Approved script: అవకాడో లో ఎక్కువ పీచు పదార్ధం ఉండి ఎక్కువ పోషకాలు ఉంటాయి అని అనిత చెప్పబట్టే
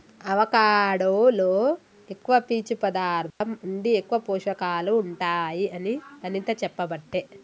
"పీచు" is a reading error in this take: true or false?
false